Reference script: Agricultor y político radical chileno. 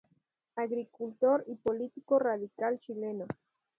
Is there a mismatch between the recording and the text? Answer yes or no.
no